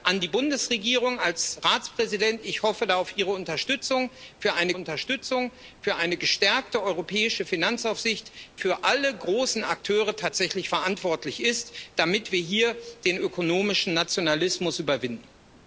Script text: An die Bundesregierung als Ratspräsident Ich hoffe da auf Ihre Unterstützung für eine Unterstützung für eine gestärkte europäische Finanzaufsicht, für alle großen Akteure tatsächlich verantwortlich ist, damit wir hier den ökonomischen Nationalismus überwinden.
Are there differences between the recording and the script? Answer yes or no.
no